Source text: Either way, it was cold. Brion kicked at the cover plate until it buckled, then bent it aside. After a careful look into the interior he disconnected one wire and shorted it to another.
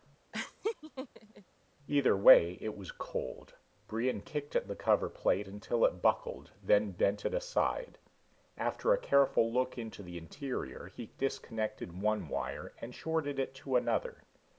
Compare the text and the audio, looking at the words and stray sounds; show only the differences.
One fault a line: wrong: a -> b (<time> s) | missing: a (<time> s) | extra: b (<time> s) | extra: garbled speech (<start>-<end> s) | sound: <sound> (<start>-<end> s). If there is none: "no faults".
sound: laugh (0.3-1.4 s)